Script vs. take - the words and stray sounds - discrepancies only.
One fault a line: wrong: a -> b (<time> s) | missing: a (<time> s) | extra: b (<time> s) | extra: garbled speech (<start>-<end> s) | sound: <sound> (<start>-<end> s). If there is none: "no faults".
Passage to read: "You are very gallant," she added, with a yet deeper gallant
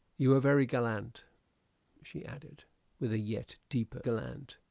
no faults